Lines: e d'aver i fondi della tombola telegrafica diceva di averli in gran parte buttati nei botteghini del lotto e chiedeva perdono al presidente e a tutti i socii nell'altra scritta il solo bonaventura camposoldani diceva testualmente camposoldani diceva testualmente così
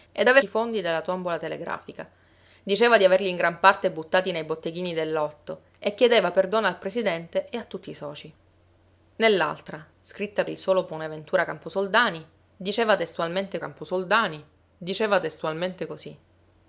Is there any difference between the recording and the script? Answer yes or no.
no